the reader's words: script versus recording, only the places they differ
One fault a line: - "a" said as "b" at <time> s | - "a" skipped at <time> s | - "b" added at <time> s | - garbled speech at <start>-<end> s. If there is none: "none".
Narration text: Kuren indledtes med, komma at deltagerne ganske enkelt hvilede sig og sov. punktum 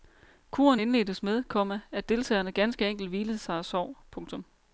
none